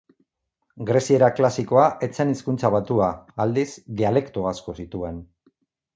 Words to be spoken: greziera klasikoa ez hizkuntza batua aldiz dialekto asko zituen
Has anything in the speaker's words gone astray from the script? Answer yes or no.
yes